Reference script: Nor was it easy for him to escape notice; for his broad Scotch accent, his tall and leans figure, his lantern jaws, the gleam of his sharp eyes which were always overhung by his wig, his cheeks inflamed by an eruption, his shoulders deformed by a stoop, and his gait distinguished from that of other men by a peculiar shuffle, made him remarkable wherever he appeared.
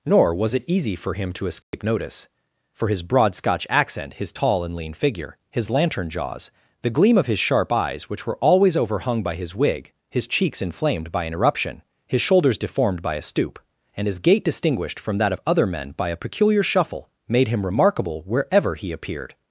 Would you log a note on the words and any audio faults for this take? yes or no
yes